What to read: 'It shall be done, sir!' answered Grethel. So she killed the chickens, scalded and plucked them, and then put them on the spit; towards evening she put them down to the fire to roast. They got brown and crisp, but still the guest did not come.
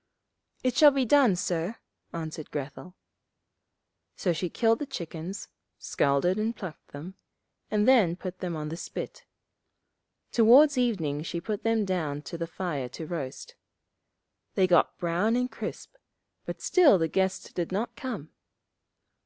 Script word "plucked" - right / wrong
right